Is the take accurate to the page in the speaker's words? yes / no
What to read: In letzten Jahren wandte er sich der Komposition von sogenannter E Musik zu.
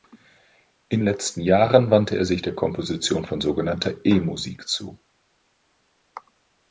yes